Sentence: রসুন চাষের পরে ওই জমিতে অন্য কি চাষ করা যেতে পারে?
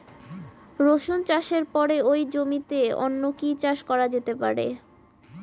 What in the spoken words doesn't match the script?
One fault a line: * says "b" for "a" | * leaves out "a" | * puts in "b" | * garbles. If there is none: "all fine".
all fine